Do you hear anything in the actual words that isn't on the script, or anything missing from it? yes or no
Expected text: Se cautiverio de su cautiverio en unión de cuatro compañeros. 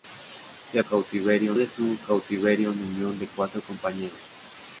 no